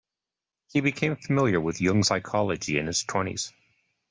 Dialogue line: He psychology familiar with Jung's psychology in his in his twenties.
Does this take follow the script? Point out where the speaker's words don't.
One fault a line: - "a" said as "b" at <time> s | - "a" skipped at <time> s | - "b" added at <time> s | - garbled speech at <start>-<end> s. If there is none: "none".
- "psychology" said as "became" at 0.8 s
- "in his" skipped at 3.0 s